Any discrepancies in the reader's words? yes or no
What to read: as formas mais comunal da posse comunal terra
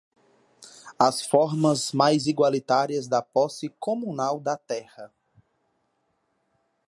yes